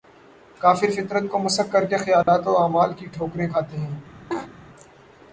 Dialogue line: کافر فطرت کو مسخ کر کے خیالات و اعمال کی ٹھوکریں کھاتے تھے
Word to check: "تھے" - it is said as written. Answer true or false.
false